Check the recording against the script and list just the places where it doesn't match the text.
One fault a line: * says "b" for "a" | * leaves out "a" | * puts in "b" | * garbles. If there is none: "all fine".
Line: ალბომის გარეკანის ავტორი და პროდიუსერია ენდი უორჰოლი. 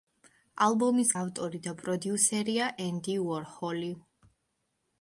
* leaves out "გარეკანის"